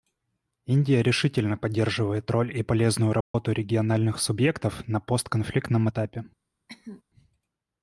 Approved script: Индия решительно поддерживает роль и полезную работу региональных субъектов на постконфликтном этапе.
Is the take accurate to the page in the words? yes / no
yes